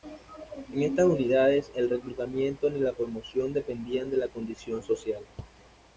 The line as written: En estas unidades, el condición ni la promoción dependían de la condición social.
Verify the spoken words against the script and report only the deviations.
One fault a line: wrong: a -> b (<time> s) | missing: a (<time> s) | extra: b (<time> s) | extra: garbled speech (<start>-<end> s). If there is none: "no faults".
wrong: condición -> reclutamiento (1.9 s)